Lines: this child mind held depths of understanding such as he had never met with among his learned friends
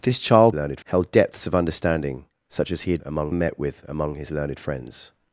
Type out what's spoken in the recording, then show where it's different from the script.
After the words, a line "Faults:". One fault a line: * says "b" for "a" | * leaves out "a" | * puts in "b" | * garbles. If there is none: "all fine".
this child learned held depths of understanding such as he had among met with among his learned friends
Faults:
* says "learned" for "mind"
* says "among" for "never"